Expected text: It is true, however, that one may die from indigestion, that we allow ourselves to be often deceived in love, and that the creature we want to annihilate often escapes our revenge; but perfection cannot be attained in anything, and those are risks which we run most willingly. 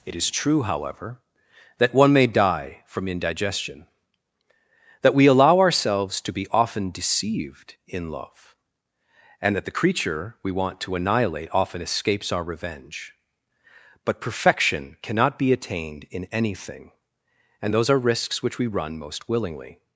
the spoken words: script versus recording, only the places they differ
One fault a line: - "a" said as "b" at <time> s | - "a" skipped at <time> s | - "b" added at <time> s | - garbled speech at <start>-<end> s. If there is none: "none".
none